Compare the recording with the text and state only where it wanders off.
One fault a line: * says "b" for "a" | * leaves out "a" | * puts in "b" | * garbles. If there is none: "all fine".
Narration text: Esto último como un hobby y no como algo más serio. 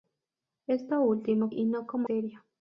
* leaves out "como un hobby"
* leaves out "algo más"